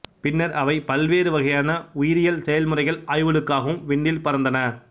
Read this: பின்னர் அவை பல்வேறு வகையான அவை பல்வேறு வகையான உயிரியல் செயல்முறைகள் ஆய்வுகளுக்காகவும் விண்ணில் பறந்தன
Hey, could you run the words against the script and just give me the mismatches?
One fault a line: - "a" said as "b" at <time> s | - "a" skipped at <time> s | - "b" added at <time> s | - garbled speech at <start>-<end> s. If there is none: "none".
- "அவை பல்வேறு வகையான" skipped at 1.7 s